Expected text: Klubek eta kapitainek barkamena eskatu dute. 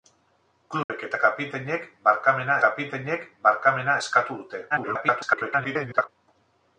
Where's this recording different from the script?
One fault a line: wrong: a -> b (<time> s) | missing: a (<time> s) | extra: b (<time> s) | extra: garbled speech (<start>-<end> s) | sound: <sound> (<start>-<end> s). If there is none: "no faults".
sound: dropout (0.8-0.9 s)
extra: kapitainek barkamena (2.6 s)
extra: garbled speech (4.7-6.1 s)